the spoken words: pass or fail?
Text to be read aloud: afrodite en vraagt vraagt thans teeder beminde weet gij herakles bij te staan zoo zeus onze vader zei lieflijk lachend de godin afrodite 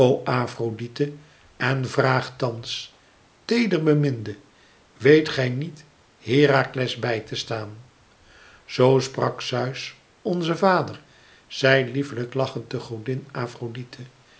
fail